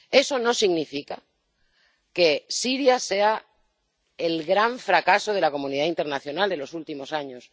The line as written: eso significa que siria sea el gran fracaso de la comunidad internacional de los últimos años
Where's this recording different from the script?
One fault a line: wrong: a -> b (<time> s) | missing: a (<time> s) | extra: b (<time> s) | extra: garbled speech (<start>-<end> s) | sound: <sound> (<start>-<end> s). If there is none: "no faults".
extra: no (0.4 s)